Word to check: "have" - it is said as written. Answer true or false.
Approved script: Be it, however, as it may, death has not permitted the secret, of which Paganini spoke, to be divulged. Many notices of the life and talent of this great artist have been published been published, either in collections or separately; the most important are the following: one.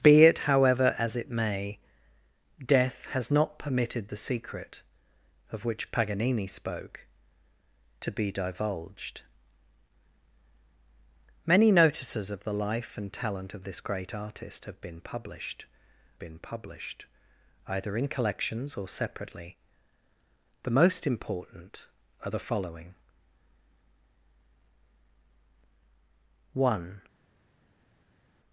true